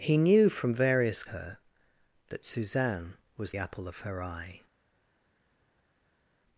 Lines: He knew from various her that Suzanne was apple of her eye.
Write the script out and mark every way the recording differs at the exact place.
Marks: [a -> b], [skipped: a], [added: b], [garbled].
He knew from various her that Suzanne was apple of her eye.